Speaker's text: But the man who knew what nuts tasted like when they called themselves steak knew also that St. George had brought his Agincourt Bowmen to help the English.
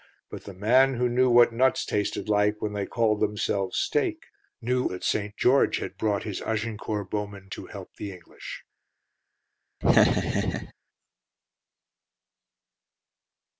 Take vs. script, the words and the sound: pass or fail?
fail